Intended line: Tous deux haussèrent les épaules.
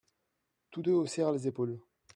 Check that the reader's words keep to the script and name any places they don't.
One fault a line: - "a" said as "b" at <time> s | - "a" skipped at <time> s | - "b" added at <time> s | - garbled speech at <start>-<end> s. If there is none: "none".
none